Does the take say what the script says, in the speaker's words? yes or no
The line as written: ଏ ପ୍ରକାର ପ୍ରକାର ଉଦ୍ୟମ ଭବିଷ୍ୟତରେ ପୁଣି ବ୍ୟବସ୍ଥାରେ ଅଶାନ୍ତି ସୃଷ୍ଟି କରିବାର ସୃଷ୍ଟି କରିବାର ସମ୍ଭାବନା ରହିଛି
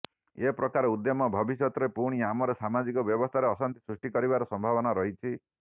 no